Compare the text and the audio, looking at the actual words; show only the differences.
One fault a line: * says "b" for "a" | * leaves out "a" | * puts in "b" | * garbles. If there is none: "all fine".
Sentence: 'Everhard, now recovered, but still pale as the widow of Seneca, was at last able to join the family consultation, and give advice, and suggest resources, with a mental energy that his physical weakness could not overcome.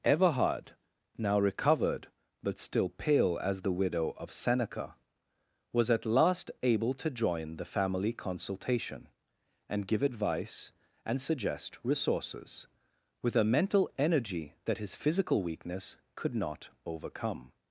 all fine